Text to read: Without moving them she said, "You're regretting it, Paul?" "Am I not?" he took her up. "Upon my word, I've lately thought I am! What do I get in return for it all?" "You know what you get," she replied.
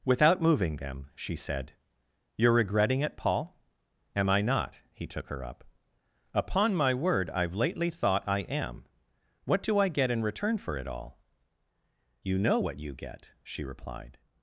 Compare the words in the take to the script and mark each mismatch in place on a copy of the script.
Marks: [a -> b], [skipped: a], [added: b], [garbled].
Without moving them she said, "You're regretting it, Paul?" "Am I not?" he took her up. "Upon my word, I've lately thought I am! What do I get in return for it all?" "You know what you get," she replied.